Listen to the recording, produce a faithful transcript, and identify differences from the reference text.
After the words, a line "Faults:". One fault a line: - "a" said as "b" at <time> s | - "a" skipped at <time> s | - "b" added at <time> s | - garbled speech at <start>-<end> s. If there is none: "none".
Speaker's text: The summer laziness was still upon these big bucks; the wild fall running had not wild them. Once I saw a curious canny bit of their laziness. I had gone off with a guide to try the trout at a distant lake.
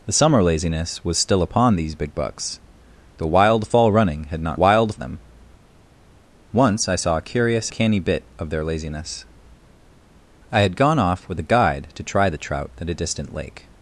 The summer laziness was still upon these big bucks; the wild fall running had not wild them. Once I saw a curious canny bit of their laziness. I had gone off with a guide to try the trout at a distant lake.
Faults:
none